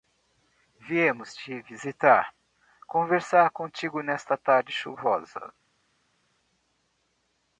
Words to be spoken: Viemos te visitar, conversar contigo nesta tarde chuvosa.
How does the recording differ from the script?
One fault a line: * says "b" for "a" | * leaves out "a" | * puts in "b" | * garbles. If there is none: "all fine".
all fine